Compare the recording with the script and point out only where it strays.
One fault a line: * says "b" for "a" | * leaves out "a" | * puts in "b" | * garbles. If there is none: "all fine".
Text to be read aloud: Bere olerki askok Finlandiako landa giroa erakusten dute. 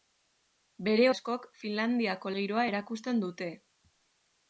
* leaves out "olerki"
* leaves out "landa"